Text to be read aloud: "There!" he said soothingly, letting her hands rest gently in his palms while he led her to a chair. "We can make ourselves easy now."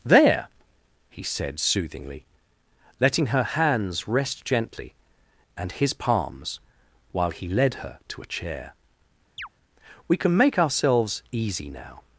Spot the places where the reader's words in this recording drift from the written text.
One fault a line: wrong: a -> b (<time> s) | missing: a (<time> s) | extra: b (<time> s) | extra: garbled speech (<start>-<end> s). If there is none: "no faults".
wrong: in -> and (5.6 s)